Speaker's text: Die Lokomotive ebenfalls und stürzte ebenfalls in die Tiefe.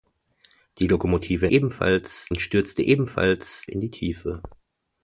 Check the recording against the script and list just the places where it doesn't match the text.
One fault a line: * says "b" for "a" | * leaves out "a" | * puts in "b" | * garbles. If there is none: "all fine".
all fine